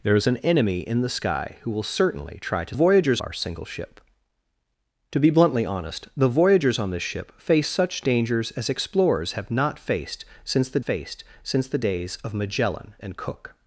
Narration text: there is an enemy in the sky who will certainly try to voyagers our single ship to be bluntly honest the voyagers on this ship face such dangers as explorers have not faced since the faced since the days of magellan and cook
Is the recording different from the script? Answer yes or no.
no